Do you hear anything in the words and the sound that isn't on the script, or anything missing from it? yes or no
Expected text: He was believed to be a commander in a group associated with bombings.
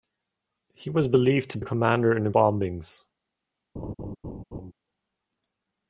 yes